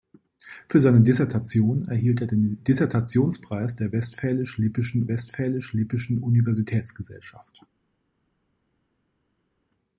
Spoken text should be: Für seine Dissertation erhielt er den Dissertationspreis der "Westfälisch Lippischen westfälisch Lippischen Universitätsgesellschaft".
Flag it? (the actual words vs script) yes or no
no